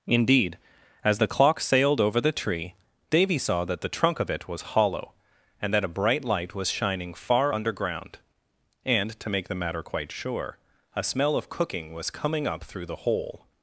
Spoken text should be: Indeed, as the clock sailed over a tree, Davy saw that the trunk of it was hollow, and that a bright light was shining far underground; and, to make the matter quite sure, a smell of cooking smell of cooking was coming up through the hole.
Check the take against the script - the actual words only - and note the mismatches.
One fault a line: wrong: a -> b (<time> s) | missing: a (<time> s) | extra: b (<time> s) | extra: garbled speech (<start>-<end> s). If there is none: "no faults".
wrong: a -> the (2.2 s)
missing: smell of cooking (11.9 s)